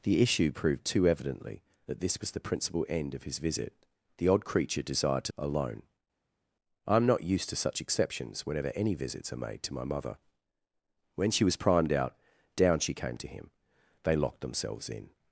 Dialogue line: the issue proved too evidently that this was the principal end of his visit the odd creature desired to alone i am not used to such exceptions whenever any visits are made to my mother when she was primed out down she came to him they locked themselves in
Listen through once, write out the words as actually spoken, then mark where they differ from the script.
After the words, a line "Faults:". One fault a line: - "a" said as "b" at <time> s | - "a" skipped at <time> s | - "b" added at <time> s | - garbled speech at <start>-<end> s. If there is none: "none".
the issue proved too evidently that this was the principal end of his visit the odd creature desired to alone i am not used to such exceptions whenever any visits are made to my mother when she was primed out down she came to him they locked themselves in
Faults:
none